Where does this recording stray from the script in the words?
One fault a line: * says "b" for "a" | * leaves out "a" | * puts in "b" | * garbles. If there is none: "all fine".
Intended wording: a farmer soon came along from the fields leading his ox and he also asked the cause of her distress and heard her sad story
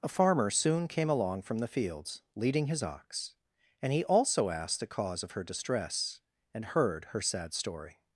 all fine